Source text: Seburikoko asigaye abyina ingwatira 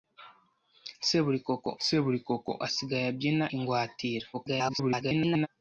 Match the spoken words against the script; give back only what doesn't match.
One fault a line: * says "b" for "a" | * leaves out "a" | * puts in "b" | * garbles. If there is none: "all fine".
* puts in "seburikoko"
* garbles